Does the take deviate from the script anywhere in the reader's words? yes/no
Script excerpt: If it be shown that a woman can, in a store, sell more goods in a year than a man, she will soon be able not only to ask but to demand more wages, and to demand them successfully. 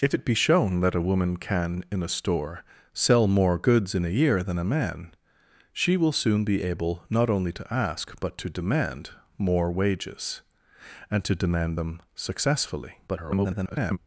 yes